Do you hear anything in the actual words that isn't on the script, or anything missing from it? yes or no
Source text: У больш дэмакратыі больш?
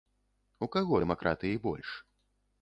yes